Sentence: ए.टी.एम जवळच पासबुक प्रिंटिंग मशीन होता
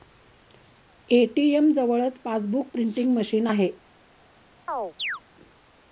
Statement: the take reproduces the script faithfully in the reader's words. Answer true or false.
false